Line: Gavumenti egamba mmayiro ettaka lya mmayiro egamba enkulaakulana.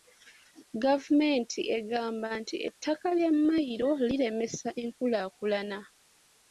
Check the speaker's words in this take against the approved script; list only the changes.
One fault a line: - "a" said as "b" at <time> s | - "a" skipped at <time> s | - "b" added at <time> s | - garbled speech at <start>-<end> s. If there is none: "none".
- "mmayiro" said as "nti" at 2.4 s
- "egamba" said as "liremesa" at 4.1 s